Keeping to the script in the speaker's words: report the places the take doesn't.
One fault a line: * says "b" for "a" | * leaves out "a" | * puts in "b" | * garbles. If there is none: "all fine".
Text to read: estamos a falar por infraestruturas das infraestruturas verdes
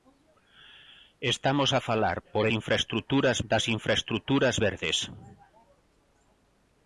all fine